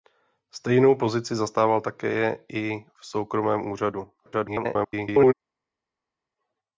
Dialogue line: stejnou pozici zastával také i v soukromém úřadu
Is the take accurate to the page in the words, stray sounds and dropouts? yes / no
no